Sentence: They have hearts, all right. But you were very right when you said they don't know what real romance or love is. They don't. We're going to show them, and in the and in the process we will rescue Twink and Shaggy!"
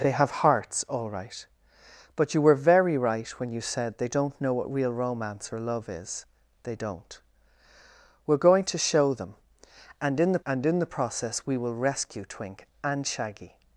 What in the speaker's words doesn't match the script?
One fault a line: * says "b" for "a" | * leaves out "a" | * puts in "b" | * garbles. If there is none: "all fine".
all fine